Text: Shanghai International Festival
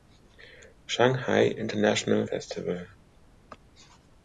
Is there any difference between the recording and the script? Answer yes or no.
no